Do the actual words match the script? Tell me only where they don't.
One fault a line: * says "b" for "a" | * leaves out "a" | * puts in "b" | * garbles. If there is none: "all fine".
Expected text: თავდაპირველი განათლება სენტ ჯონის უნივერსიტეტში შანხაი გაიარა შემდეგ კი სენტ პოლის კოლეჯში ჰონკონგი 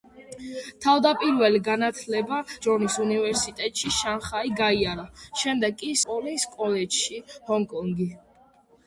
* leaves out "სენტ"
* leaves out "სენტ"